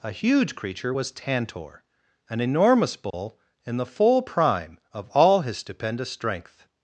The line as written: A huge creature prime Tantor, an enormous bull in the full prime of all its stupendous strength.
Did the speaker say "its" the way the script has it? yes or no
no